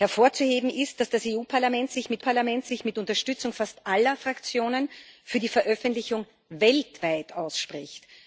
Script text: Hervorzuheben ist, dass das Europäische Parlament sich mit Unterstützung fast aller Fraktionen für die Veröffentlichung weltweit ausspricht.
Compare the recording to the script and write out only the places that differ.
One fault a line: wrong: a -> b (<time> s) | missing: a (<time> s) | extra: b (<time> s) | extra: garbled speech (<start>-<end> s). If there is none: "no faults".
extra: Parlament sich mit (2.2 s)